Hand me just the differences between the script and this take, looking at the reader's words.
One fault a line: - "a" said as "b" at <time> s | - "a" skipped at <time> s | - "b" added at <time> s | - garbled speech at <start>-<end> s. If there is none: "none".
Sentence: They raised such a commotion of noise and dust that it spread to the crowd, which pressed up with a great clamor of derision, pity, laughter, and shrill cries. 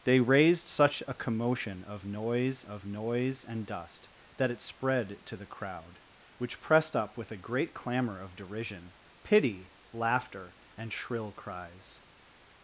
- "of noise" added at 2.6 s